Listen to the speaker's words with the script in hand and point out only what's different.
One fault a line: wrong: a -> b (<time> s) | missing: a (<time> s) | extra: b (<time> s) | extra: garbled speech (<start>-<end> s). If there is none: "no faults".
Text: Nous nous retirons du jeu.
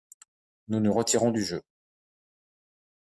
no faults